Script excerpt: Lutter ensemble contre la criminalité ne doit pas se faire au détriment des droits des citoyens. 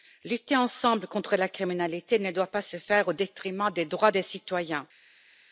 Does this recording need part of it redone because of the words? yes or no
no